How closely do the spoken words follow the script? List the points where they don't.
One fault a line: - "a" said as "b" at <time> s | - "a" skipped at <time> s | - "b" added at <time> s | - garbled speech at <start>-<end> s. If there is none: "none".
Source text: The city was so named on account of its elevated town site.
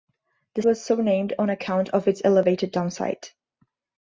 - "city" skipped at 0.6 s